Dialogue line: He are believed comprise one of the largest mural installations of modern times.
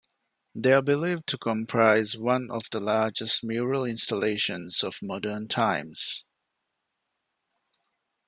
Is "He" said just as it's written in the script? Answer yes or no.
no